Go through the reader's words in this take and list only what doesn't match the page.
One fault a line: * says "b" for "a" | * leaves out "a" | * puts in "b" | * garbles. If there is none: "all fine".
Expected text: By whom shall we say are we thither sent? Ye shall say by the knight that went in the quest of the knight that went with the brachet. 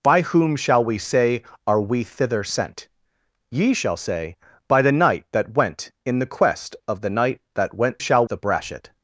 * says "shall" for "with"